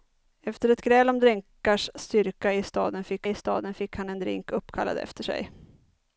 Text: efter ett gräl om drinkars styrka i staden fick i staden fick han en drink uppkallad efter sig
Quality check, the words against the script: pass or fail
pass